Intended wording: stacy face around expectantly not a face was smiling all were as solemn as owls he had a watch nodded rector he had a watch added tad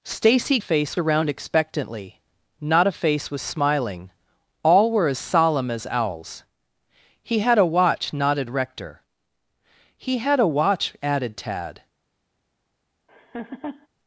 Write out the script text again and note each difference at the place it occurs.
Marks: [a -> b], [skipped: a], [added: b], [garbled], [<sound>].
stacy face around expectantly not a face was smiling all were as solemn as owls he had a watch nodded rector he had a watch added tad [laugh]